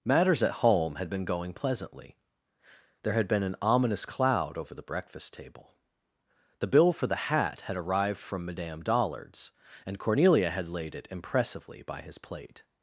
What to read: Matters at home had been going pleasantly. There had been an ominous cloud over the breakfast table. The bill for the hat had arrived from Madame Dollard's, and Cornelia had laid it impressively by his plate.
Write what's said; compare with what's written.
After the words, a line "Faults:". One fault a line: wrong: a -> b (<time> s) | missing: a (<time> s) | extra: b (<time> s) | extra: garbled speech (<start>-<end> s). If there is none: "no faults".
Matters at home had been going pleasantly. There had been an ominous cloud over the breakfast table. The bill for the hat had arrived from Madame Dollard's, and Cornelia had laid it impressively by his plate.
Faults:
no faults